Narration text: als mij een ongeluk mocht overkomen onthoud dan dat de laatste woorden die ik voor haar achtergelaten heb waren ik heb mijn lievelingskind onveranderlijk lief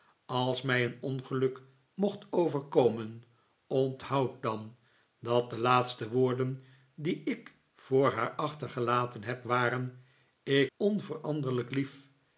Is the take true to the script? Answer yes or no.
no